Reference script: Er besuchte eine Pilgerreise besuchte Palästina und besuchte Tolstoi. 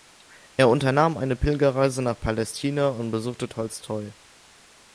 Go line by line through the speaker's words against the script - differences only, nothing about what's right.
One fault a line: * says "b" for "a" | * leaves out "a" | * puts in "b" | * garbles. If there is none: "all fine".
* says "unternahm" for "besuchte"
* says "nach" for "besuchte"